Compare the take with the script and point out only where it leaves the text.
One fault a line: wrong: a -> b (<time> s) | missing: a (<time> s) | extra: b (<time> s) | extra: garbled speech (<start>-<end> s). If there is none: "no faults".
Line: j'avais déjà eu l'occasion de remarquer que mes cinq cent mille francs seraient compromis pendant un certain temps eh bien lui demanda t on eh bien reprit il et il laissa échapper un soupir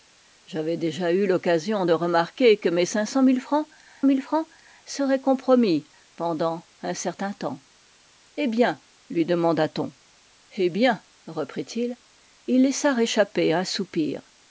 extra: mille francs (4.0 s)